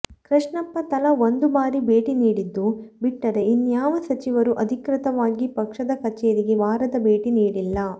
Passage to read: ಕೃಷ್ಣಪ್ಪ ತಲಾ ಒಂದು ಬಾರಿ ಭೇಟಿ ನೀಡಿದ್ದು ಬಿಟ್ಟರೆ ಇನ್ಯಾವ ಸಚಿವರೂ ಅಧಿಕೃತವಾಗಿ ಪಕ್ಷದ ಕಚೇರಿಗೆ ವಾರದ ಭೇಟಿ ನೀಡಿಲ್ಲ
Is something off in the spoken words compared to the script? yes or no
no